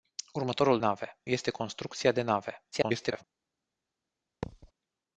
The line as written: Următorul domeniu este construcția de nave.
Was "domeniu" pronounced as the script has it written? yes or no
no